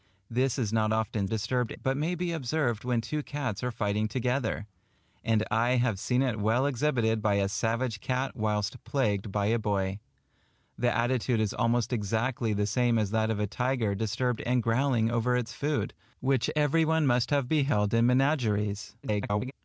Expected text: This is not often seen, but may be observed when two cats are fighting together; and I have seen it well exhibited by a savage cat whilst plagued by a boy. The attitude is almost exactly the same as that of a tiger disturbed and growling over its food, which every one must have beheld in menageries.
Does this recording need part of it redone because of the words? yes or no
yes